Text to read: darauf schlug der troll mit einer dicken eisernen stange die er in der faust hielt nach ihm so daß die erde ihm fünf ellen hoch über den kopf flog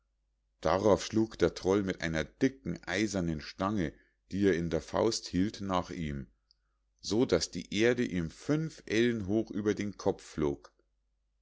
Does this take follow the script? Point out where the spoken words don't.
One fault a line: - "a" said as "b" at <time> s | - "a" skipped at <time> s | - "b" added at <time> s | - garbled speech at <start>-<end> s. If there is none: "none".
none